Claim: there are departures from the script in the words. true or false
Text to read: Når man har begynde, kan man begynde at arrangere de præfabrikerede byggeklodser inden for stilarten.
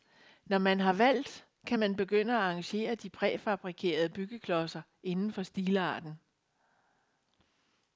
true